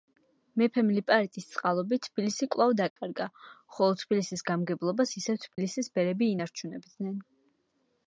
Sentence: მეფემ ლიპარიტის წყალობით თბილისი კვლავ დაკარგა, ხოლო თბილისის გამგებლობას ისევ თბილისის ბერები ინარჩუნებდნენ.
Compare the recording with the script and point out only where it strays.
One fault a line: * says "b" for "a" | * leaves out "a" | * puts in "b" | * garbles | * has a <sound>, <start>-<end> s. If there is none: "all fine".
* has a dropout, 2.9-3.0 s
* has a dropout, 5.5-5.6 s